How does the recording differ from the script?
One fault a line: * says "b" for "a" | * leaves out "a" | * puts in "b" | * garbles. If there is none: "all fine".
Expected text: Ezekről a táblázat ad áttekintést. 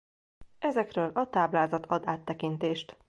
all fine